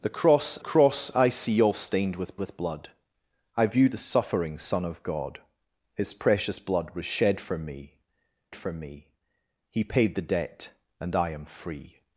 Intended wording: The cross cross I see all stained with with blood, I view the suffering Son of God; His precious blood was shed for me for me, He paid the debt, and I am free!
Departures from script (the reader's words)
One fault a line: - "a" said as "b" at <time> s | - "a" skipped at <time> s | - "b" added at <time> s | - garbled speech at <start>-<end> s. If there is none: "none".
none